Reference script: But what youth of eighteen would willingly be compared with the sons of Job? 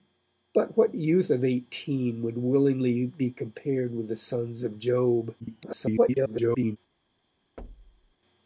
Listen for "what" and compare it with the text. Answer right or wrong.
right